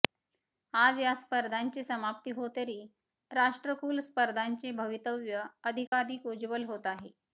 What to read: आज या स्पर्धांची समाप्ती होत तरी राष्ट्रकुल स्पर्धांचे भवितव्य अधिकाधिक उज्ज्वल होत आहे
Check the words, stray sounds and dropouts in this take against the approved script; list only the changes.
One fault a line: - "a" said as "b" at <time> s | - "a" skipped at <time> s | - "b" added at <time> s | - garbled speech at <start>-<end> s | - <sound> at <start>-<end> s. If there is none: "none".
- dropout at 5.9-5.9 s